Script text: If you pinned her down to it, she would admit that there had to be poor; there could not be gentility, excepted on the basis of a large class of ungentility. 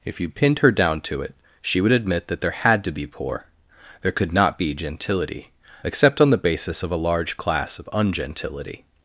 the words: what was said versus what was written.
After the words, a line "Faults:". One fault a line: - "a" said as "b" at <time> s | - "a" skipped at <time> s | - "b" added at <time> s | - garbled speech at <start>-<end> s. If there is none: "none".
If you pinned her down to it, she would admit that there had to be poor; there could not be gentility, except on the basis of a large class of ungentility.
Faults:
- "excepted" said as "except" at 5.8 s